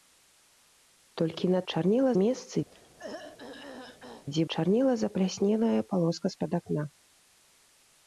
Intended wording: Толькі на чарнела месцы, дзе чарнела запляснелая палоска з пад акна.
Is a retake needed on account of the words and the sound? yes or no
yes